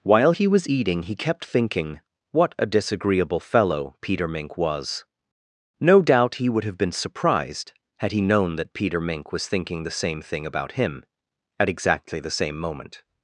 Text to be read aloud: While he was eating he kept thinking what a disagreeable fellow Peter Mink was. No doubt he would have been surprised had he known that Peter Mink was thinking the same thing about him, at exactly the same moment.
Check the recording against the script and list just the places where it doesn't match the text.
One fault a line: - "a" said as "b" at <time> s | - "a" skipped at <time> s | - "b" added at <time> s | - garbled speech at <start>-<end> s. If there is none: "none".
none